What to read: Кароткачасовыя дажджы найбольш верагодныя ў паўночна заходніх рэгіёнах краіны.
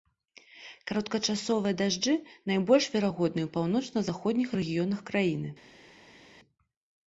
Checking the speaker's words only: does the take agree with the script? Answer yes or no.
yes